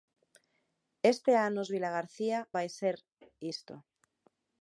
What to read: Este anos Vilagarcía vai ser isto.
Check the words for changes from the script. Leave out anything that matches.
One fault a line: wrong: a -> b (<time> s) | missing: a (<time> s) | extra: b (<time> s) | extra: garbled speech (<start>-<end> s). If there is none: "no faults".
no faults